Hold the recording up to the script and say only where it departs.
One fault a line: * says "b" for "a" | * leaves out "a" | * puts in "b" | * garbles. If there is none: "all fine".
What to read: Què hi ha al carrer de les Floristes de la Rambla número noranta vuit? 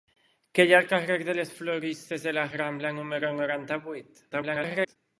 * garbles